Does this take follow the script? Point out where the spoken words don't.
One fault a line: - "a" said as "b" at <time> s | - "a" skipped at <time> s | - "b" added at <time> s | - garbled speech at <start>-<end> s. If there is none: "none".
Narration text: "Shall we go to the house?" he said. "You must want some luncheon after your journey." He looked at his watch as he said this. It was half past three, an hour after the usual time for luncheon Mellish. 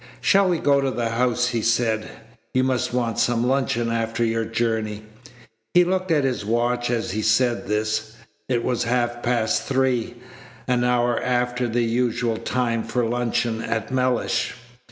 - "at" added at 13.6 s